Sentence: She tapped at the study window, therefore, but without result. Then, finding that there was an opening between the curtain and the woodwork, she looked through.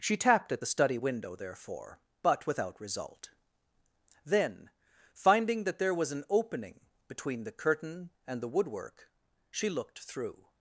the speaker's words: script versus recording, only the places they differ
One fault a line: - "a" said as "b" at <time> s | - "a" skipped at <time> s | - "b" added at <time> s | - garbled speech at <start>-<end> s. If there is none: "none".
none